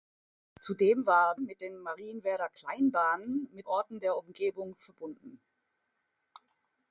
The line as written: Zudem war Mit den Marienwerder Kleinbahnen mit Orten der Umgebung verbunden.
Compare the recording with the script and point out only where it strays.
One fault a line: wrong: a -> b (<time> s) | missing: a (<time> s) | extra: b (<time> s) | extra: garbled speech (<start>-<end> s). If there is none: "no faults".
no faults